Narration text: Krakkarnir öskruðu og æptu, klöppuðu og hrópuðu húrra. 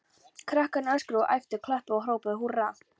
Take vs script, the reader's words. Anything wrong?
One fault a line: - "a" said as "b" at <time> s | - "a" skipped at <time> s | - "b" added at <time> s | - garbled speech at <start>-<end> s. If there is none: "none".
none